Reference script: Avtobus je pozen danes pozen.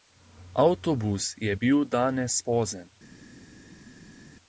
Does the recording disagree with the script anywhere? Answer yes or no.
yes